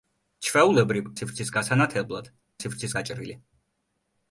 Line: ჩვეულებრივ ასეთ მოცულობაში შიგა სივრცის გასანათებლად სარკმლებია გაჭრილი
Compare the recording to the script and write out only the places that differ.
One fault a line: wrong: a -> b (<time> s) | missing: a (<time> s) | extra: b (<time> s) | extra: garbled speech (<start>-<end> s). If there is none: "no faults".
missing: ასეთ მოცულობაში შიგა (1.1 s)
wrong: სარკმლებია -> სივრცის (2.6 s)